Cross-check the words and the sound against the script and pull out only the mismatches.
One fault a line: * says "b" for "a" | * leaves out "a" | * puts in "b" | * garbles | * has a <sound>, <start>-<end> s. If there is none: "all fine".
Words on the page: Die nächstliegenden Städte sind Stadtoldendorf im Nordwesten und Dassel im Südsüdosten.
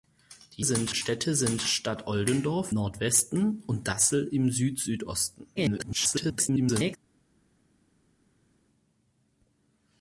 * says "sind" for "nächstliegenden"
* leaves out "im"
* garbles